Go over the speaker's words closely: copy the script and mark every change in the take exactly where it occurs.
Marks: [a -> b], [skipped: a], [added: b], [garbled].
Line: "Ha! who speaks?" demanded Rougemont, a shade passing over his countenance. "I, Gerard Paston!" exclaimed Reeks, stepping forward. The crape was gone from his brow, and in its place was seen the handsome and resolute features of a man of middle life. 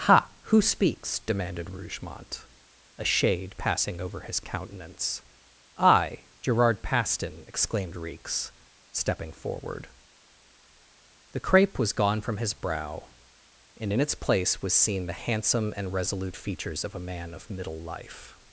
"Ha! who speaks?" demanded Rougemont, a shade passing over his countenance. "I, Gerard Paston!" exclaimed Reeks, stepping forward. The crape was gone from his brow, and in its place was seen the handsome and resolute features of a man of middle life.